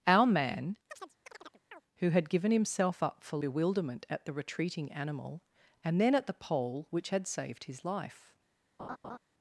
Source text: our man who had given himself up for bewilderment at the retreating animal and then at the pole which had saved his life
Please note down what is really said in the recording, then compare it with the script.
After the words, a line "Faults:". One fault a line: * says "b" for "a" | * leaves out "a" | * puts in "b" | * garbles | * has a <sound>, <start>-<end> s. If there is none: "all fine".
our man who had given himself up for bewilderment at the retreating animal and then at the pole which had saved his life
Faults:
* has a chirp, 0.9-1.8 s
* has a laugh, 8.8-9.2 s